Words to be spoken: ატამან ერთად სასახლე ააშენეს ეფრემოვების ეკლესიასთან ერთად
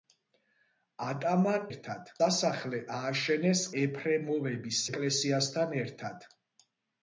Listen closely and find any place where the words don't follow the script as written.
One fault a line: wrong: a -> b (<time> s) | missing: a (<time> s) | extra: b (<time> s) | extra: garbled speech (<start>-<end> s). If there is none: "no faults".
no faults